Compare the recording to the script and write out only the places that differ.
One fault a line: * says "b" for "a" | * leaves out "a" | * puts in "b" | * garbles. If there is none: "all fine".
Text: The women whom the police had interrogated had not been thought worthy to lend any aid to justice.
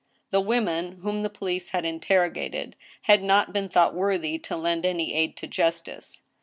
all fine